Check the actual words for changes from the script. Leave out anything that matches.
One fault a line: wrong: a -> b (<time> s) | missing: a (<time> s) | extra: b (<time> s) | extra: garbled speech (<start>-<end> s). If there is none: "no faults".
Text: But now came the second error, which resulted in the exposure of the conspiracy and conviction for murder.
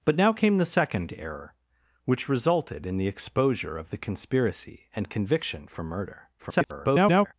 extra: garbled speech (6.4-7.3 s)